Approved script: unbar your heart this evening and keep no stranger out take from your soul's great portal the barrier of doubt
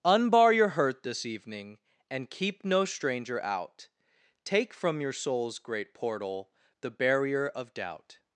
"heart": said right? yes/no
no